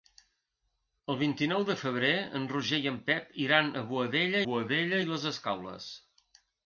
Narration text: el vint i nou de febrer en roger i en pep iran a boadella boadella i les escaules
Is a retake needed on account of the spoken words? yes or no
no